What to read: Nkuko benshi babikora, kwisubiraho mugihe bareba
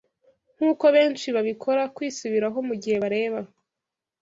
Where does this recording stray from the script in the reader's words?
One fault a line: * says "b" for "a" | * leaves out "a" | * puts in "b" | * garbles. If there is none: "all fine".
all fine